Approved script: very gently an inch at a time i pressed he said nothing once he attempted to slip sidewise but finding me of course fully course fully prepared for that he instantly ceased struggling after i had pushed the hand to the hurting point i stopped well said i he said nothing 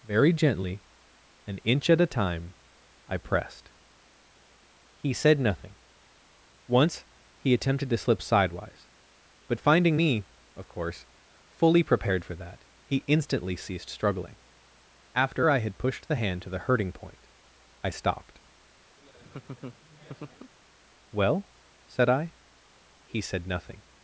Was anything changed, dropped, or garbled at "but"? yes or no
no